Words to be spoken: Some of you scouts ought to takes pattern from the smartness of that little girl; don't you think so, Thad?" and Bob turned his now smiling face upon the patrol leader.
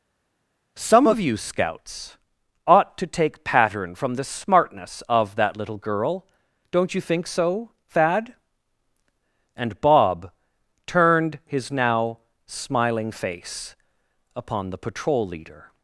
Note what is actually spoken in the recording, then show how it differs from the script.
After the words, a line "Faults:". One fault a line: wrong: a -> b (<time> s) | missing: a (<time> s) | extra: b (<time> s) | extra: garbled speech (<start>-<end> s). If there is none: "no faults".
Some of you scouts ought to take pattern from the smartness of that little girl; don't you think so, Thad?" and Bob turned his now smiling face upon the patrol leader.
Faults:
wrong: takes -> take (3.1 s)